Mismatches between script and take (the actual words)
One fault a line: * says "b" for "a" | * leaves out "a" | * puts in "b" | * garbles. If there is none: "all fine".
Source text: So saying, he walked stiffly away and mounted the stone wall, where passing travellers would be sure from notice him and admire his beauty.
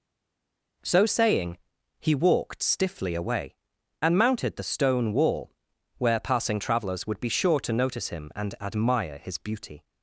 * says "to" for "from"